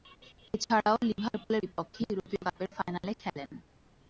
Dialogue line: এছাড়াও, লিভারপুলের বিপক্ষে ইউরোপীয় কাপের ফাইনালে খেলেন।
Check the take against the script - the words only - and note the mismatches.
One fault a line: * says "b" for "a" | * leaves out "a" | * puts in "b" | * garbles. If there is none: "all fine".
all fine